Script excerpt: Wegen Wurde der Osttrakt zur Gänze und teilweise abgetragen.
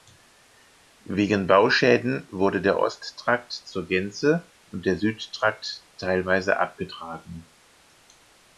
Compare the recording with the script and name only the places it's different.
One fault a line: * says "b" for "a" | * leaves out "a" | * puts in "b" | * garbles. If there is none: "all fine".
* puts in "Bauschäden"
* puts in "der Südtrakt"